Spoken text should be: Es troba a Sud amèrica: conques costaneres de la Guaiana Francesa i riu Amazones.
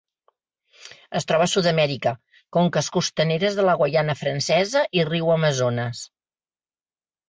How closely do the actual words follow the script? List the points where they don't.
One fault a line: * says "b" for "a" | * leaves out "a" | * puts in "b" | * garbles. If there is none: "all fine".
all fine